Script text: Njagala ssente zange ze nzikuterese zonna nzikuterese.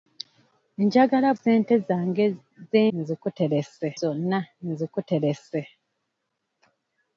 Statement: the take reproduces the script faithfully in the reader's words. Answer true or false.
true